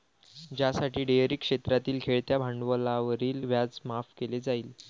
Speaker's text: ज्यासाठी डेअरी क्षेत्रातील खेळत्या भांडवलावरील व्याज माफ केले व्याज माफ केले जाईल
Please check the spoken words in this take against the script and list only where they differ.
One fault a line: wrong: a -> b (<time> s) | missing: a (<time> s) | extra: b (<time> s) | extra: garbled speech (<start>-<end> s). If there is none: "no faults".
missing: व्याज माफ केले (4.4 s)